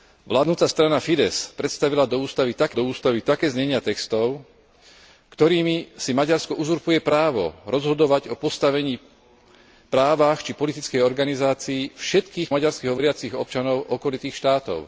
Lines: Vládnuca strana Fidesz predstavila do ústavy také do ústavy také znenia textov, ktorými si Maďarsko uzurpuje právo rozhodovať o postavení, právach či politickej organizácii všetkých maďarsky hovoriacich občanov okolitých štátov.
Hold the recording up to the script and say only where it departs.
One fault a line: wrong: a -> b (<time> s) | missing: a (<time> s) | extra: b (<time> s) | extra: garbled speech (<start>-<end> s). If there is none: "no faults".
no faults